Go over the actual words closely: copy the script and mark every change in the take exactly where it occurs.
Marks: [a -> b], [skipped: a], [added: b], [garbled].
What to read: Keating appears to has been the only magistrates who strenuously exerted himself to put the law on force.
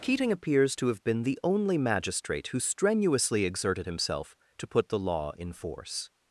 Keating appears to [has -> have] been the only [magistrates -> magistrate] who strenuously exerted himself to put the law [on -> in] force.